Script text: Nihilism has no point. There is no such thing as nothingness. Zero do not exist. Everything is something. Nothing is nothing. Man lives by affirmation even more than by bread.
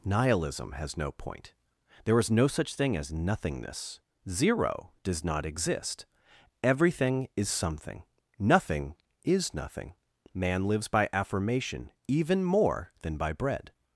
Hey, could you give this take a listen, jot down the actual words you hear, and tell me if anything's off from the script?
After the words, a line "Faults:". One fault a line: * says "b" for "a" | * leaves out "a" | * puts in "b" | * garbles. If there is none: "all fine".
Nihilism has no point. There is no such thing as nothingness. Zero does not exist. Everything is something. Nothing is nothing. Man lives by affirmation even more than by bread.
Faults:
* says "does" for "do"